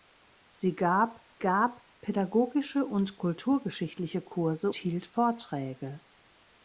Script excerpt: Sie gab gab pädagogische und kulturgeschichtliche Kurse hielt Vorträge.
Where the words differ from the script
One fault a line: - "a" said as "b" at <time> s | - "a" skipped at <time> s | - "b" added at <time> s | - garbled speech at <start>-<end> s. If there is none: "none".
none